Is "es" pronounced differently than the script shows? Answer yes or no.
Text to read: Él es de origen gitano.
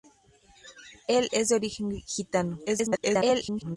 no